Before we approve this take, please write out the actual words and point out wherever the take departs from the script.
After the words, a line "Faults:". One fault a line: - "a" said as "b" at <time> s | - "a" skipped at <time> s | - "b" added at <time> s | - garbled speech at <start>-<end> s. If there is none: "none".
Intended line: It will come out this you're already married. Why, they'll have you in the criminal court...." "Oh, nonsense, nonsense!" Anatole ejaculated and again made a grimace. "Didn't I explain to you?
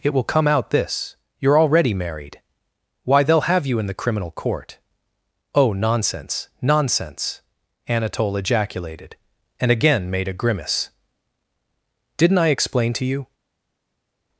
It will come out this you're already married. Why, they'll have you in the criminal court...." "Oh, nonsense, nonsense!" Anatole ejaculated and again made a grimace. "Didn't I explain to you?
Faults:
none